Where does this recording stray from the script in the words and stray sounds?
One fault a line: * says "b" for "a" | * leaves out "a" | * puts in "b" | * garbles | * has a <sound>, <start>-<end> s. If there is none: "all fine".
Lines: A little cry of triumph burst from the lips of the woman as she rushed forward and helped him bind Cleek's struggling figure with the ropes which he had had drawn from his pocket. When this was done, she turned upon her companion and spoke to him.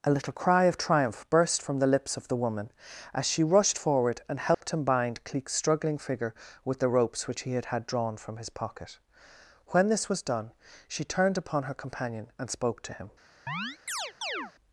* has a dropout, 4.5-4.6 s
* has a chirp, 13.5-14.5 s